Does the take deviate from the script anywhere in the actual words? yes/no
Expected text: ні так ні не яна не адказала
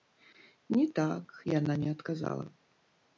yes